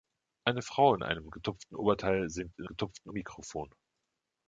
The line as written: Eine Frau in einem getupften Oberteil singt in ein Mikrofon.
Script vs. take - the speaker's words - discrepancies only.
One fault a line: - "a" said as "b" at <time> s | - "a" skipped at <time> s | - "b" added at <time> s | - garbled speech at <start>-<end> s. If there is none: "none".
- "ein" said as "getupften" at 2.6 s